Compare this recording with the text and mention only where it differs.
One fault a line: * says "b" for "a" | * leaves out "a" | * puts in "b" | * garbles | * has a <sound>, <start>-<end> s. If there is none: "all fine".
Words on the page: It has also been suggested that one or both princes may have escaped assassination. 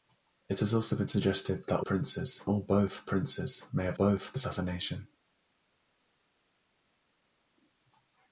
* says "princes" for "one"
* says "both" for "escaped"